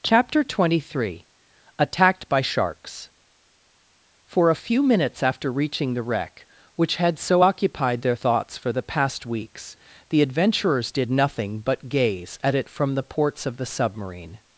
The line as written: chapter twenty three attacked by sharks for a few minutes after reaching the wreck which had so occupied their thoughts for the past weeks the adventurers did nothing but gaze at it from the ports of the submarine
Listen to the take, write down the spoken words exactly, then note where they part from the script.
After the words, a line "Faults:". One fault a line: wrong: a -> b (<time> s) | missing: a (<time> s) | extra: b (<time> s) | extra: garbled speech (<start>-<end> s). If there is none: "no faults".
chapter twenty three attacked by sharks for a few minutes after reaching the wreck which had so occupied their thoughts for the past weeks the adventurers did nothing but gaze at it from the ports of the submarine
Faults:
no faults